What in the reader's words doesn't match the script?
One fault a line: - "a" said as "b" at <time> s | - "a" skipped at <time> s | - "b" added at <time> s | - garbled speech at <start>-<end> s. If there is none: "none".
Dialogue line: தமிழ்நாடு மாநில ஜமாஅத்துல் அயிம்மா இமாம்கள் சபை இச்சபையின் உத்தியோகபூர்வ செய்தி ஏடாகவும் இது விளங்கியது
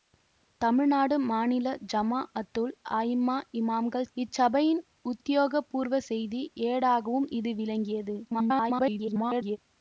- "சபை" skipped at 4.1 s
- garbled speech at 8.2-9.6 s